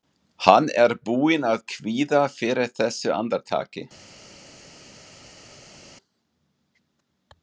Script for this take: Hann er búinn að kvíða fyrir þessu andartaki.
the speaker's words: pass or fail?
pass